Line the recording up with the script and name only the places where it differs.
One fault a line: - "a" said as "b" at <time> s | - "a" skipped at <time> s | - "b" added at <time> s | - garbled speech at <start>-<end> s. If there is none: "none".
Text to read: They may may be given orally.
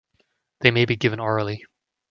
- "may" skipped at 0.8 s